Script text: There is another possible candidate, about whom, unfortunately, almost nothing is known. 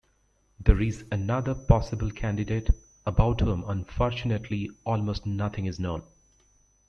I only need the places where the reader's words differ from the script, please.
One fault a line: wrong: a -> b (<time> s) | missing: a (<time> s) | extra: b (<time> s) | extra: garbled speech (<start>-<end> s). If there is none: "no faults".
no faults